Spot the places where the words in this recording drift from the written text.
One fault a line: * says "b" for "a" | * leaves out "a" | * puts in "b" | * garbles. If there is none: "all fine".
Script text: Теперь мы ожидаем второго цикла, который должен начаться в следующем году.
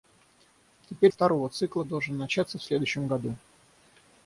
* leaves out "мы ожидаем"
* leaves out "который"